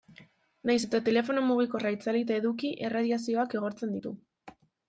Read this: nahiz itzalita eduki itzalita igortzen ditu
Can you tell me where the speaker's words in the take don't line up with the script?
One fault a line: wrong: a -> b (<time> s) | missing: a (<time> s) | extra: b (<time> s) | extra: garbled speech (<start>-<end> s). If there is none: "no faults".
extra: eta telefono mugikorra (0.9 s)
wrong: itzalita -> erradiazioak (2.9 s)